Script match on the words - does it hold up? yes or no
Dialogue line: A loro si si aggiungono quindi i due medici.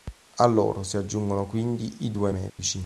no